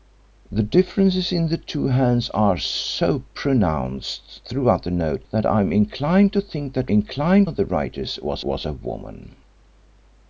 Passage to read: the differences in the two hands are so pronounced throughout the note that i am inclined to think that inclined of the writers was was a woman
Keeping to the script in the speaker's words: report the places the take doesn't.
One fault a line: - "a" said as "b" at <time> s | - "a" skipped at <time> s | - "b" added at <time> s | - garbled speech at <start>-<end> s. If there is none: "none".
none